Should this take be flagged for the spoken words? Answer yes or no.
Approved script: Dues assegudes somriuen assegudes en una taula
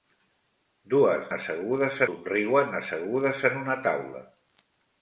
no